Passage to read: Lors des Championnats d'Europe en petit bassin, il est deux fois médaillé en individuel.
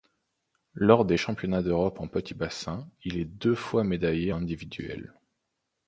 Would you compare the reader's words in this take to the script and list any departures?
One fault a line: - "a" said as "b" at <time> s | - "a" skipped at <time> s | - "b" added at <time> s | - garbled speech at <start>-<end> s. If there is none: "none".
- "en" skipped at 4.3 s